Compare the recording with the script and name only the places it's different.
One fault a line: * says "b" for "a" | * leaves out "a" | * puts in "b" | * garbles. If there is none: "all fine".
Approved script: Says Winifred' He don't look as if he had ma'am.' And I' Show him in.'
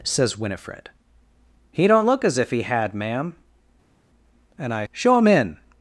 all fine